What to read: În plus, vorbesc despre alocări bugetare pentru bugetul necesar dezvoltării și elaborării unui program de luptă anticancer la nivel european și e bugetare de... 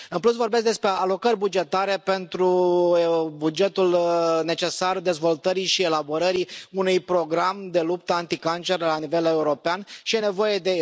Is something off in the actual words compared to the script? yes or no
yes